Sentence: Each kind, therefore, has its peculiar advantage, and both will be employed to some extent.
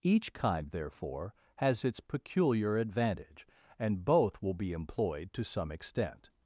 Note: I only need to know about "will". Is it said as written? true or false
true